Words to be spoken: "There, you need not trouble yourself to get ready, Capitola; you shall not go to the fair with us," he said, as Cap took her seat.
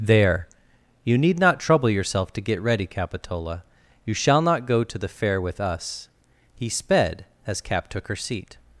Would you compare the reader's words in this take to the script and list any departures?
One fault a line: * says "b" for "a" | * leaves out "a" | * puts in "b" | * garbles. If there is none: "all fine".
* says "sped" for "said"